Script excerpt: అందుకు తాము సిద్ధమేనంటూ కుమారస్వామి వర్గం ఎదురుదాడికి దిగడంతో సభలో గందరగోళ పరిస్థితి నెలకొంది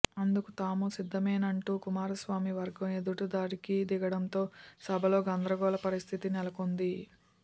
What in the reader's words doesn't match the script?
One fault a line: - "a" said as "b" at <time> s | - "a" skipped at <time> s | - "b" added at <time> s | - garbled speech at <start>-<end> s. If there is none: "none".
none